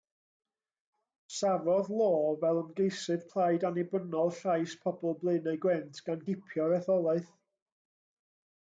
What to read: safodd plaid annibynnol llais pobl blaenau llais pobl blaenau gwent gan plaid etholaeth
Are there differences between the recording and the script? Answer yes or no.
yes